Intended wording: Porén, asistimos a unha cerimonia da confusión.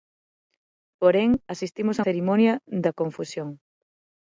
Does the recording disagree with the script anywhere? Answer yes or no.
yes